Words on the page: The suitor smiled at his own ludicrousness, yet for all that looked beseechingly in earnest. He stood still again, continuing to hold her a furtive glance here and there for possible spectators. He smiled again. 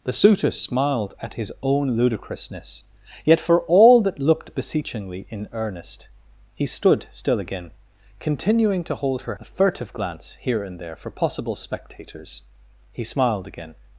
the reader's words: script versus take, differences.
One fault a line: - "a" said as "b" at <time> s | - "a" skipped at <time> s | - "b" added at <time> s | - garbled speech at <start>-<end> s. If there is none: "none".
none